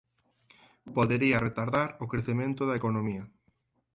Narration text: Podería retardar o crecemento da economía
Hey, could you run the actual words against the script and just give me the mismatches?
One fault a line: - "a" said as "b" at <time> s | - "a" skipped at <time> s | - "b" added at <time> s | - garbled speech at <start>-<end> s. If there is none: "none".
none